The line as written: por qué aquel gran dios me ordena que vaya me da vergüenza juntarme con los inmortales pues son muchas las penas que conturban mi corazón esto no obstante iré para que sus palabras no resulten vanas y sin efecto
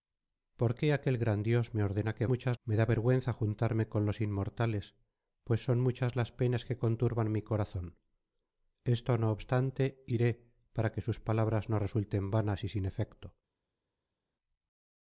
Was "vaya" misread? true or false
true